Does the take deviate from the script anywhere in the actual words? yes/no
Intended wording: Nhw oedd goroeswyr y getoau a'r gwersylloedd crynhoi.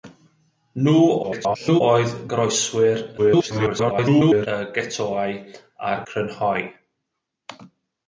yes